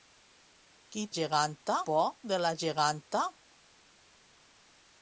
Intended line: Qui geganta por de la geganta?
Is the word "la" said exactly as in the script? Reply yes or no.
yes